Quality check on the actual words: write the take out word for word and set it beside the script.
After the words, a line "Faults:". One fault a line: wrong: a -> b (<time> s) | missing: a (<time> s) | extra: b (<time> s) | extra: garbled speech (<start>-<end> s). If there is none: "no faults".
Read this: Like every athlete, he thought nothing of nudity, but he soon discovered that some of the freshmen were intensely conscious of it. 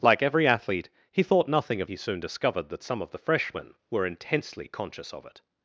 Like every athlete, he thought nothing of he soon discovered that some of the freshmen were intensely conscious of it.
Faults:
missing: nudity but (1.9 s)